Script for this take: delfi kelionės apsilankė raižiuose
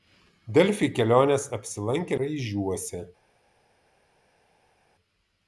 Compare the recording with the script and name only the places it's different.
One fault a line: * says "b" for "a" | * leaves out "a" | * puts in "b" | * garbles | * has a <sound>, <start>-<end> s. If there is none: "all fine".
all fine